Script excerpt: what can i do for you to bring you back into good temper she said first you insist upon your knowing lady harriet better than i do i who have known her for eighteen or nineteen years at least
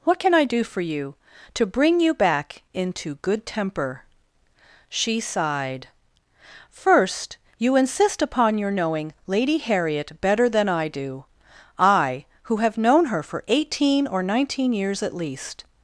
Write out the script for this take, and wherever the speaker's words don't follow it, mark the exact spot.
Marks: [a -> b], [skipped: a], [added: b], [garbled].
what can i do for you to bring you back into good temper she [said -> sighed] first you insist upon your knowing lady harriet better than i do i who have known her for eighteen or nineteen years at least